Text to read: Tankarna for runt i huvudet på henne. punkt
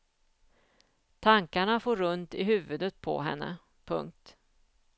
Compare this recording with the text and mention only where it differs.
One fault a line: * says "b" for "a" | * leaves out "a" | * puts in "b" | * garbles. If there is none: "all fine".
all fine